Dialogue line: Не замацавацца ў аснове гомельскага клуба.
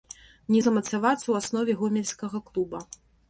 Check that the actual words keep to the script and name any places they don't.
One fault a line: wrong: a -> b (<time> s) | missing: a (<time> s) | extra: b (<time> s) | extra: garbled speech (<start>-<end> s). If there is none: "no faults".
no faults